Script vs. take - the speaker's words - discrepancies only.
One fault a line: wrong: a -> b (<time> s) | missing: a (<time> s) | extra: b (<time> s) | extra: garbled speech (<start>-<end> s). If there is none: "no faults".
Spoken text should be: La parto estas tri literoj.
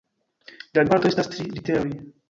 no faults